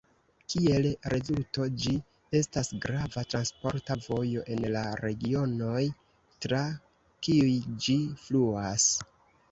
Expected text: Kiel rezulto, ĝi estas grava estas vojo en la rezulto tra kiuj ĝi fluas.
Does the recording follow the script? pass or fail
fail